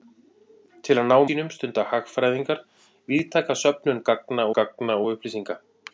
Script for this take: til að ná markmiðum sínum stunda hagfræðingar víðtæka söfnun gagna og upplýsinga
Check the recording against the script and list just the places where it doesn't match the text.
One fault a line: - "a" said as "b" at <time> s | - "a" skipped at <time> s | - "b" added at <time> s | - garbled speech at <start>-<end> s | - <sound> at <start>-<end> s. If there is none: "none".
- "markmiðum" skipped at 1.2 s
- "gagna" added at 4.6 s